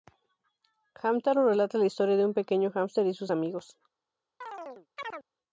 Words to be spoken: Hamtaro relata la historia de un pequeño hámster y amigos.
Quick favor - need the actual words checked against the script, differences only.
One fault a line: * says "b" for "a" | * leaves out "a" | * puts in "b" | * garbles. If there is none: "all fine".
* puts in "sus"